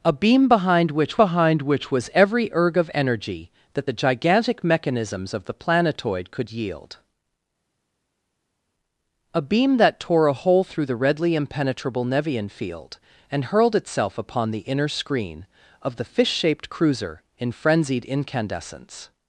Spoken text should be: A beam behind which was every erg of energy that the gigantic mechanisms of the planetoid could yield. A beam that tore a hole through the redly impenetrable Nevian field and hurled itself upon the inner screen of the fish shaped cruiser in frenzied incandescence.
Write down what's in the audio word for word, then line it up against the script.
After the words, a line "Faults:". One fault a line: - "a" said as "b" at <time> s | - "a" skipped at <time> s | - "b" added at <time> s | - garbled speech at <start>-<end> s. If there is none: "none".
A beam behind which behind which was every erg of energy that the gigantic mechanisms of the planetoid could yield. A beam that tore a hole through the redly impenetrable Nevian field and hurled itself upon the inner screen of the fish shaped cruiser in frenzied incandescence.
Faults:
- "behind which" added at 1.1 s